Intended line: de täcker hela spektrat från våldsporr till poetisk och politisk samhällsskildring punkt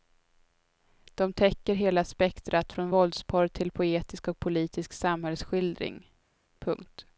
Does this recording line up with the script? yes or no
yes